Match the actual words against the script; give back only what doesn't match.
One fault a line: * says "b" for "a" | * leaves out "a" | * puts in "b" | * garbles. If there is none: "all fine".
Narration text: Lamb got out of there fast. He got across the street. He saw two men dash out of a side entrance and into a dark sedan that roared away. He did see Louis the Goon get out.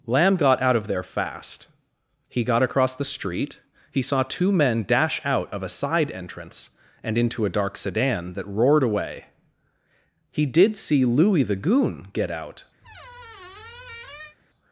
all fine